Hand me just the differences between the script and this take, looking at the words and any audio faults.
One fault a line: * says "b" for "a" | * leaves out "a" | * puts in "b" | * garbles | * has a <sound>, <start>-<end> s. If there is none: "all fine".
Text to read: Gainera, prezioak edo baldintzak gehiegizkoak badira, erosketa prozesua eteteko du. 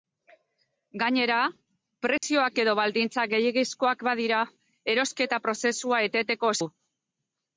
* has a dropout, 2.2-2.2 s